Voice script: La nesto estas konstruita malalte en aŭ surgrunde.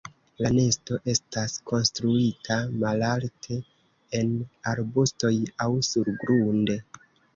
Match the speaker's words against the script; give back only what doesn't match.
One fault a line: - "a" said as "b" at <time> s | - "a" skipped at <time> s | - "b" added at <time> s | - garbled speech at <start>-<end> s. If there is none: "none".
- "arbustoj" added at 4.7 s